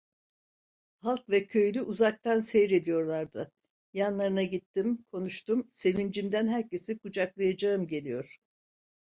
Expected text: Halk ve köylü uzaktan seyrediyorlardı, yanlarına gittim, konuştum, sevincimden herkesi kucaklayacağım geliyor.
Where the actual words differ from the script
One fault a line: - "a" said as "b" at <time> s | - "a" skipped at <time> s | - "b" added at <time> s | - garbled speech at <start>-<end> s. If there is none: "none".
none